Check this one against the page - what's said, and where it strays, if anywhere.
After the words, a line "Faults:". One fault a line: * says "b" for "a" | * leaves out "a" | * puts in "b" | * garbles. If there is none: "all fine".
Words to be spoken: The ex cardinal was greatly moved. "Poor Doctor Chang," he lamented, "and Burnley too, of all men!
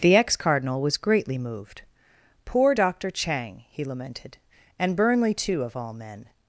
The ex cardinal was greatly moved. "Poor Doctor Chang," he lamented, "and Burnley too, of all men!
Faults:
all fine